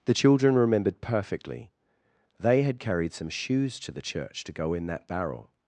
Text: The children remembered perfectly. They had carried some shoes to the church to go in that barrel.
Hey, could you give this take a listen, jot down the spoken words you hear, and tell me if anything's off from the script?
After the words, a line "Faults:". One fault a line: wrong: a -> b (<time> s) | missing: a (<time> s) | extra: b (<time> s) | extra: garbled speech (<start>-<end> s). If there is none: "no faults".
The children remembered perfectly. They had carried some shoes to the church to go in that barrel.
Faults:
no faults